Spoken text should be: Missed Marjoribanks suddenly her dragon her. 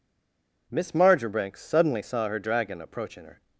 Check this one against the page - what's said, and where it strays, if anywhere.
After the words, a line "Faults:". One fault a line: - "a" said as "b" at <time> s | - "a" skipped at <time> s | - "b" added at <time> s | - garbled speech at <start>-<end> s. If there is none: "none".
Miss Marjoribanks suddenly saw her dragon approaching her.
Faults:
- "Missed" said as "Miss" at 0.7 s
- "saw" added at 2.0 s
- "approaching" added at 2.8 s